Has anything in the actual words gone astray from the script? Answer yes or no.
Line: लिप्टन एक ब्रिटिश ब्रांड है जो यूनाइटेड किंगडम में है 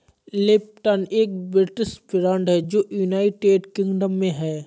no